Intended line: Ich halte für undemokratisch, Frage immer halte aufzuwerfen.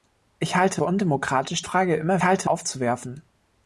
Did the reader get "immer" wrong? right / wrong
right